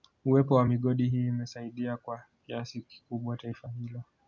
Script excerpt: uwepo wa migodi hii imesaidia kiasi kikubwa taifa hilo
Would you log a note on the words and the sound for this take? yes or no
yes